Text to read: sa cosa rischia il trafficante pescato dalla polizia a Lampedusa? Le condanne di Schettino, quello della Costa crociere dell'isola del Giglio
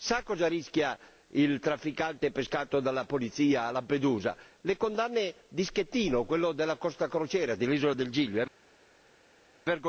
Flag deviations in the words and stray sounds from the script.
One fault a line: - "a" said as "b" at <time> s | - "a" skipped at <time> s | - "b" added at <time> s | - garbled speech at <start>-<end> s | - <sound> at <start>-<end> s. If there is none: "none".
none